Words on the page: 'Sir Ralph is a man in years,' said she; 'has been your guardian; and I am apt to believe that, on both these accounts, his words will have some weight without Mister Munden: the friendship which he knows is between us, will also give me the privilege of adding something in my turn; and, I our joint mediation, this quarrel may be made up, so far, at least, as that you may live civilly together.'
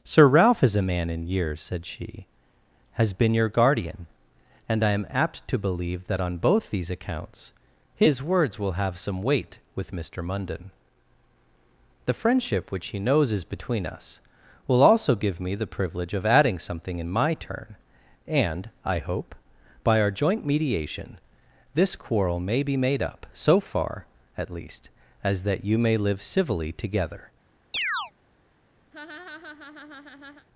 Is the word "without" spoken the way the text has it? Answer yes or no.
no